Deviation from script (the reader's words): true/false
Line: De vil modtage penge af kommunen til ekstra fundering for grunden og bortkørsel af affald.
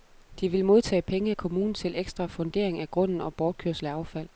true